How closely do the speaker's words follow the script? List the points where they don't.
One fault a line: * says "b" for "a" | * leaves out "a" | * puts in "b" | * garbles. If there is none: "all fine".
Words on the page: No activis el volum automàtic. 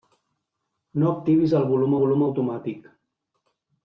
* puts in "volum"